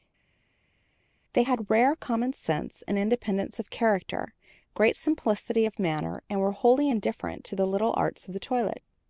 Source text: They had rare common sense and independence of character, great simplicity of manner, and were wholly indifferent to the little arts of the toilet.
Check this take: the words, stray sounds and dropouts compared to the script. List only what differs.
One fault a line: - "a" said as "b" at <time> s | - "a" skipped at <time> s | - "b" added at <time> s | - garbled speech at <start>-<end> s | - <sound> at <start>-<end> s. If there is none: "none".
none